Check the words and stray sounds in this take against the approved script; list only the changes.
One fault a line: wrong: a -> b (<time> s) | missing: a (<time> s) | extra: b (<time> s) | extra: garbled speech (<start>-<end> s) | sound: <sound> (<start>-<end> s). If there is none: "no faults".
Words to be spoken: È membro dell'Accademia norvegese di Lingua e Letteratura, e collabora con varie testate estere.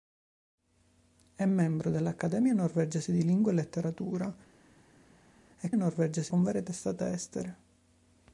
wrong: collabora -> norvegese (5.8 s)